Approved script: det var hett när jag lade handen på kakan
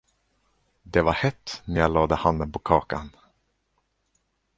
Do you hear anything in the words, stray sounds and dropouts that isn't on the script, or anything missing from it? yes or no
no